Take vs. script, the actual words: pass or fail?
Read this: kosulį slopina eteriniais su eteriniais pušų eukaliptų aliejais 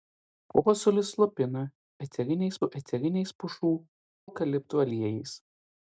pass